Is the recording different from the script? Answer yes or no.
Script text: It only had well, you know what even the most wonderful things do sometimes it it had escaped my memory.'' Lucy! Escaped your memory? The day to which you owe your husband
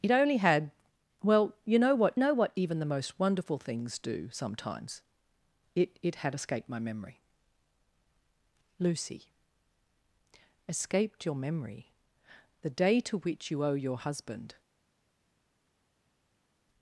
yes